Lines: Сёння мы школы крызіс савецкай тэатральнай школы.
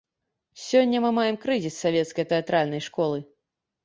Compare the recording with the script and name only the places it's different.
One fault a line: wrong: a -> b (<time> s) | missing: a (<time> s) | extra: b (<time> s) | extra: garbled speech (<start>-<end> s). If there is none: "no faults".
wrong: школы -> маем (1.2 s)